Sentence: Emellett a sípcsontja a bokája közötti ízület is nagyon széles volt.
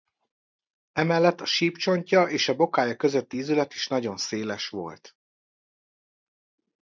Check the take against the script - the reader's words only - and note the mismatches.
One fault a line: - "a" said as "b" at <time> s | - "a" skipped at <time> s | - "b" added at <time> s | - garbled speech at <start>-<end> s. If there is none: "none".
- "és" added at 2.2 s